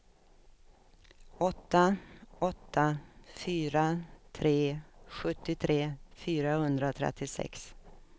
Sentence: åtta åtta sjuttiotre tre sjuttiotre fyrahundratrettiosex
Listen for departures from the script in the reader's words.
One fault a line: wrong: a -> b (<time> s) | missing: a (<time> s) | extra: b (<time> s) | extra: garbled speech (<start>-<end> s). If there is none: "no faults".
wrong: sjuttiotre -> fyra (3.3 s)